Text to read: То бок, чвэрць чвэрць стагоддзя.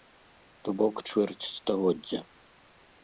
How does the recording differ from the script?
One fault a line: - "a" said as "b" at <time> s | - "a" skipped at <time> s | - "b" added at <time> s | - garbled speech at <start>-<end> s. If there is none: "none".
- "чвэрць" skipped at 1.5 s